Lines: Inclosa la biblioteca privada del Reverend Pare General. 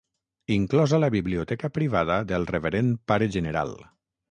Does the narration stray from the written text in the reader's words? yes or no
no